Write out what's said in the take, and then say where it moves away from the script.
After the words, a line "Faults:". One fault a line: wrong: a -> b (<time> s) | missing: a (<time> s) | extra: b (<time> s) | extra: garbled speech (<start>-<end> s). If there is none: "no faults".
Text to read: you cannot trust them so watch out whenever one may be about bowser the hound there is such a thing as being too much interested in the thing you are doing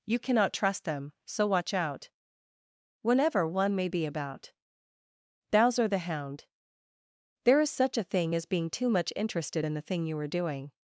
you cannot trust them so watch out whenever one may be about bowser the hound there is such a thing as being too much interested in the thing you are doing
Faults:
no faults